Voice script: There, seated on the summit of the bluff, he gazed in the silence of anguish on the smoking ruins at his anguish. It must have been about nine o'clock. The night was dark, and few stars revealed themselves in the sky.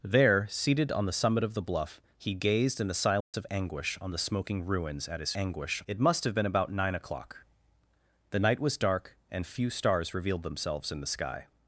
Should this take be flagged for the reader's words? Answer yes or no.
no